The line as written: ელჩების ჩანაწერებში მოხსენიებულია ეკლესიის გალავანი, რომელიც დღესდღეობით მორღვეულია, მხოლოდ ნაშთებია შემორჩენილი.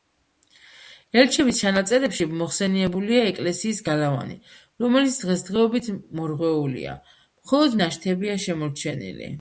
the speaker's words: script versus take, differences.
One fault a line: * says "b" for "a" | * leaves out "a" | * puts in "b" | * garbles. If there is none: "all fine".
all fine